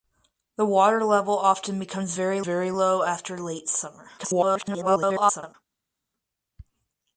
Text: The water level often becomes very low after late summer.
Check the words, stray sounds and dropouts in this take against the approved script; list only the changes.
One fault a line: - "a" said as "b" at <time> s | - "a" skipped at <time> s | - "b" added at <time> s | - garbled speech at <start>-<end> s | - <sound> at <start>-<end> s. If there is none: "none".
- "very" added at 2.4 s
- garbled speech at 4.2-5.5 s